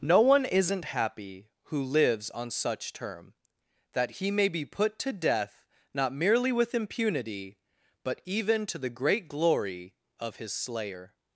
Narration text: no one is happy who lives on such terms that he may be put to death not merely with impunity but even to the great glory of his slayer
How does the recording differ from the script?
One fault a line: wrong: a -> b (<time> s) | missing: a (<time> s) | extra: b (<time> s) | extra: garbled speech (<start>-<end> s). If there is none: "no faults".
wrong: is -> isn't (0.5 s)
wrong: terms -> term (2.9 s)